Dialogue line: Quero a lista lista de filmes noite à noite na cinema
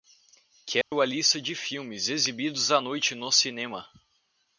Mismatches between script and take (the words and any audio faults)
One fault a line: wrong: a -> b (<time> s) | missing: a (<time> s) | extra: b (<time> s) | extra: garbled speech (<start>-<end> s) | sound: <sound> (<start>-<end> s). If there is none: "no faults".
sound: dropout (0.8-0.9 s)
missing: lista (1.4 s)
wrong: noite -> exibidos (2.1 s)
wrong: na -> no (3.1 s)